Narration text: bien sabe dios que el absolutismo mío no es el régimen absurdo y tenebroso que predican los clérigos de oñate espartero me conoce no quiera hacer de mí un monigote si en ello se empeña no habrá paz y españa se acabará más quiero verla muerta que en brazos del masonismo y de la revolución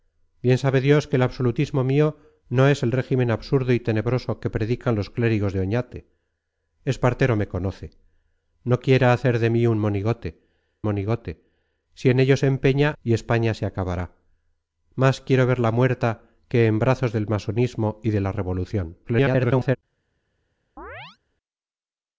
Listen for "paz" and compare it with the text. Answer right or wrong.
wrong